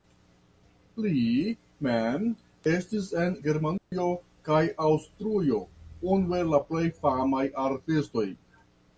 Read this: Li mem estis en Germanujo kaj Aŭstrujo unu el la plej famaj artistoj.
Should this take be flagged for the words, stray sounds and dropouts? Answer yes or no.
yes